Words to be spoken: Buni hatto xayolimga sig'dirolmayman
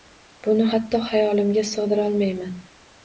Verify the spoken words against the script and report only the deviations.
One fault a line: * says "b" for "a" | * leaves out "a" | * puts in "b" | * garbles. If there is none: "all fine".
all fine